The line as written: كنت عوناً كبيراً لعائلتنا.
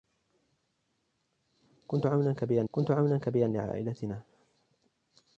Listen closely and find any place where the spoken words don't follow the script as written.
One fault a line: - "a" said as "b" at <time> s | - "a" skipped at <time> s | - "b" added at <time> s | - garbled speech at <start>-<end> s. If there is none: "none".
- "كنت عوناً كبيراً" added at 2.7 s